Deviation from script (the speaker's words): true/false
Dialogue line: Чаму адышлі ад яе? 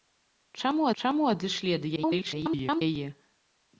true